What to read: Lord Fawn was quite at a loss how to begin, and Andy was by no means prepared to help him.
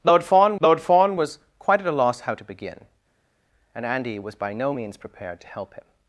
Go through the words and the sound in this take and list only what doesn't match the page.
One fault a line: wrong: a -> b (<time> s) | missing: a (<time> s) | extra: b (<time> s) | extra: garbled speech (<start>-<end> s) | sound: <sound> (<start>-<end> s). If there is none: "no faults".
extra: lord Fawn (0.6 s)